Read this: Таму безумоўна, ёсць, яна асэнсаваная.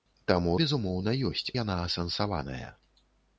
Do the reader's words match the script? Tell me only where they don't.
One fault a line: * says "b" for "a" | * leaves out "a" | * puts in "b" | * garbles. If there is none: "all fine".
all fine